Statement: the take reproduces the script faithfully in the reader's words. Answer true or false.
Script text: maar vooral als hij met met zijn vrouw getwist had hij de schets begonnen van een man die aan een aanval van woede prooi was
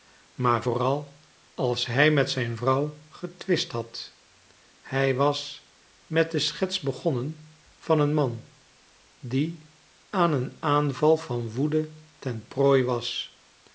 false